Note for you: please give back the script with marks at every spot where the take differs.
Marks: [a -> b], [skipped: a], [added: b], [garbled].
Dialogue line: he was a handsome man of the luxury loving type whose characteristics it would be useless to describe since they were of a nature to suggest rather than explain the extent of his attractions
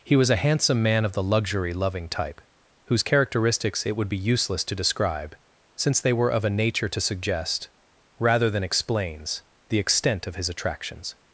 he was a handsome man of the luxury loving type whose characteristics it would be useless to describe since they were of a nature to suggest rather than [explain -> explains] the extent of his attractions